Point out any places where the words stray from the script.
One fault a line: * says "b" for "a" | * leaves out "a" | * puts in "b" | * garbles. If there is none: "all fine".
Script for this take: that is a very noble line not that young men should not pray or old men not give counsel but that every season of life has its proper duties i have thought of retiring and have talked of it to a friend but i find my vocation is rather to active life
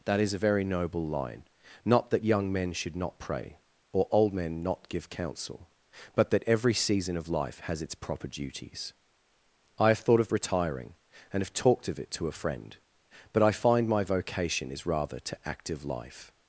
all fine